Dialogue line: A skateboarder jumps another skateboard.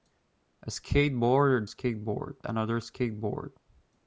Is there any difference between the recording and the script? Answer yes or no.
yes